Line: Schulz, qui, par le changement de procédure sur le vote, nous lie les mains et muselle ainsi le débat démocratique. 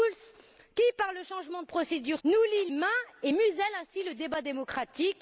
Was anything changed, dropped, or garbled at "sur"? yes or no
yes